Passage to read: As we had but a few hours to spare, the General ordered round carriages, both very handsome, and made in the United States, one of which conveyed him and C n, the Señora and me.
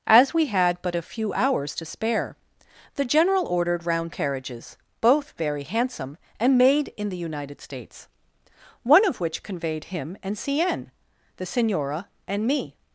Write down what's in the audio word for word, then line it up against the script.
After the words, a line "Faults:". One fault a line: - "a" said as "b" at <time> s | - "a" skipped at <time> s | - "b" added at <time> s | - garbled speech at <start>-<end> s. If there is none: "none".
As we had but a few hours to spare, the General ordered round carriages, both very handsome, and made in the United States, one of which conveyed him and C n, the Señora and me.
Faults:
none